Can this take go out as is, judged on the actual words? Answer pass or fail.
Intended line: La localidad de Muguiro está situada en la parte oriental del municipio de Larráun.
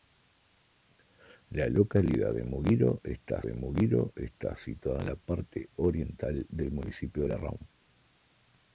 fail